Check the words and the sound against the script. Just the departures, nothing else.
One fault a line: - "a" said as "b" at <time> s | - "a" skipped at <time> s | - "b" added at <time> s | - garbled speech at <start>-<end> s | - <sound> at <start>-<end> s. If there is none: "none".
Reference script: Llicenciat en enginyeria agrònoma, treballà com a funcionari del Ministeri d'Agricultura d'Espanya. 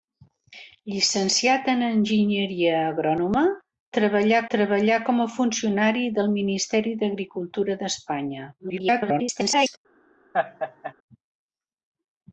- "treballà" added at 4.6 s
- garbled speech at 8.6-9.8 s
- laugh at 10.3-10.9 s